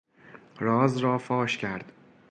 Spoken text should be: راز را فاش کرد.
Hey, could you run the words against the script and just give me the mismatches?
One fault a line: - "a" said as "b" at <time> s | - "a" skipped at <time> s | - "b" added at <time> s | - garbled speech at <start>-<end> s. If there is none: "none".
none